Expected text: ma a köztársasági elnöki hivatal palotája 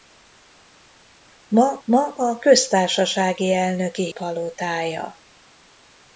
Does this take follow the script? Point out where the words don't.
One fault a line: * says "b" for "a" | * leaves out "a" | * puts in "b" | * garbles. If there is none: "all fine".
* puts in "ma"
* leaves out "hivatal"